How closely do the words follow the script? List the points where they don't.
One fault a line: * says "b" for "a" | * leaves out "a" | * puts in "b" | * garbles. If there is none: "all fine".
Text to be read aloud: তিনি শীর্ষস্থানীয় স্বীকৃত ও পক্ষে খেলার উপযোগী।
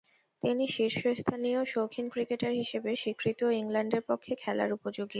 * puts in "শৌখিন ক্রিকেটার হিসেবে"
* puts in "ইংল্যান্ডের"